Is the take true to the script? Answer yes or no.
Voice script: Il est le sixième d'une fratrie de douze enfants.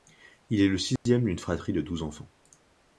yes